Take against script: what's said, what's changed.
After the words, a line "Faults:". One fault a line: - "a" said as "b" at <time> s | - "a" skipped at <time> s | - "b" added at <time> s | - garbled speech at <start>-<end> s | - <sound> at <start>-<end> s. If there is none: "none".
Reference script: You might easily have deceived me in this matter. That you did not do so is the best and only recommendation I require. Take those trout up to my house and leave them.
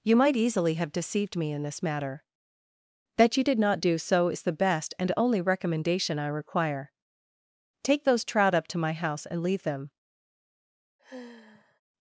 You might easily have deceived me in this matter. That you did not do so is the best and only recommendation I require. Take those trout up to my house and leave them.
Faults:
- sigh at 11.0-11.8 s